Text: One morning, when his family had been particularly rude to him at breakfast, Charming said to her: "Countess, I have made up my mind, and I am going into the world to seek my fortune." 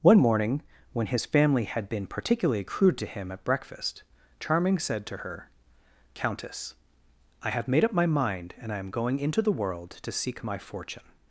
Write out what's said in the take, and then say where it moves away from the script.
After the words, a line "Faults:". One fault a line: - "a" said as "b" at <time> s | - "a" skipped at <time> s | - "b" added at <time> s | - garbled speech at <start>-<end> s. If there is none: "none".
One morning, when his family had been particularly crude to him at breakfast, Charming said to her: "Countess, I have made up my mind, and I am going into the world to seek my fortune."
Faults:
- "rude" said as "crude" at 2.6 s